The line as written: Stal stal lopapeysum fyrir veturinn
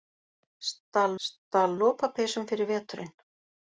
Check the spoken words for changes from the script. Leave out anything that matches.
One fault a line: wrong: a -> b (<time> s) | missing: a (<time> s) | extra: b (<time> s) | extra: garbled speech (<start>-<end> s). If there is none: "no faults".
no faults